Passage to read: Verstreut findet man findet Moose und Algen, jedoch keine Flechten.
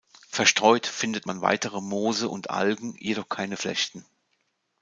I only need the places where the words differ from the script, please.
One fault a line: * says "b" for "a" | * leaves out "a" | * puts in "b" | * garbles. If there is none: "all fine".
* says "weitere" for "findet"